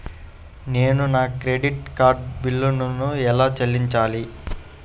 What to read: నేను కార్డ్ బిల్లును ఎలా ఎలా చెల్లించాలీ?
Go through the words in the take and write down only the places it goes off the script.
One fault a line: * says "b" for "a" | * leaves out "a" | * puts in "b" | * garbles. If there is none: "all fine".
* puts in "నా క్రెడిట్"
* leaves out "ఎలా"